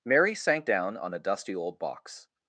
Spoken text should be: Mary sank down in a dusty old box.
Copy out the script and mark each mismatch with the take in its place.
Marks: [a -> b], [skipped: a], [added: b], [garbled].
Mary sank down [in -> on] a dusty old box.